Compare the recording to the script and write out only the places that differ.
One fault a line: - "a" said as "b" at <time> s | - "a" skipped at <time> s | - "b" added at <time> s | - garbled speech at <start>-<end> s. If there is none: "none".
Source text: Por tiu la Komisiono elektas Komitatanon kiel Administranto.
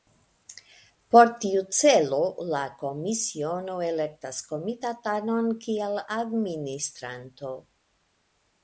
- "celo" added at 1.8 s